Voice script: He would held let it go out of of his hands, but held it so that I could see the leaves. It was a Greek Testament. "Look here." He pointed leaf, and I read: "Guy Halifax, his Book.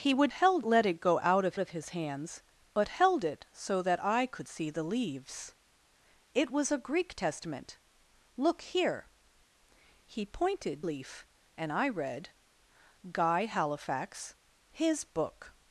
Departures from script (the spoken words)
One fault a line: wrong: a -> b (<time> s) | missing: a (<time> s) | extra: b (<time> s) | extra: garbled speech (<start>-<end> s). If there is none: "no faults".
no faults